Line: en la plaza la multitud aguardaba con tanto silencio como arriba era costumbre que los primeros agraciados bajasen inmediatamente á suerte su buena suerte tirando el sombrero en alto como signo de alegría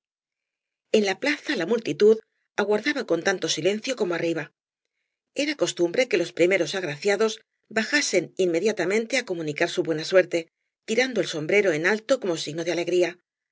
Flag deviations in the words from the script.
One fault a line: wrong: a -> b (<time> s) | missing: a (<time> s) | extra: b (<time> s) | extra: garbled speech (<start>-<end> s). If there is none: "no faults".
wrong: suerte -> comunicar (9.3 s)